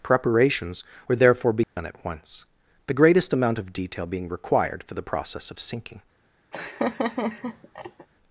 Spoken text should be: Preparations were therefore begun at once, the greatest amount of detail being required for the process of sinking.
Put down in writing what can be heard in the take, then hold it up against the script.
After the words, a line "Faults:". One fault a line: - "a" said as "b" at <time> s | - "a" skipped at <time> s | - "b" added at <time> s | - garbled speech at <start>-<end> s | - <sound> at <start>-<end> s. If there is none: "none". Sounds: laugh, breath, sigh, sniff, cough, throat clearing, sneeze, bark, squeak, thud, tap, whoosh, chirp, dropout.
Preparations were therefore begun at once, the greatest amount of detail being required for the process of sinking.
Faults:
- dropout at 1.6-1.8 s
- laugh at 6.5-8.1 s